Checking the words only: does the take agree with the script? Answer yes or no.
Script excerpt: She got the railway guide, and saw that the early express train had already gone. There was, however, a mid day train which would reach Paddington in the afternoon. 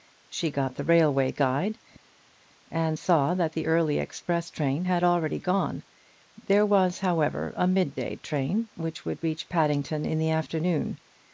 yes